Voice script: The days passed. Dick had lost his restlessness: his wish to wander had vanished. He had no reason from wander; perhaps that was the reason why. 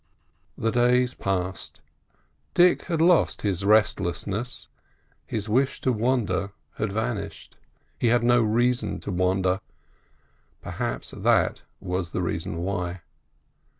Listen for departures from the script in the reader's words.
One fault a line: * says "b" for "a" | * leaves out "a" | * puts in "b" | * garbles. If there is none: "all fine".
* says "to" for "from"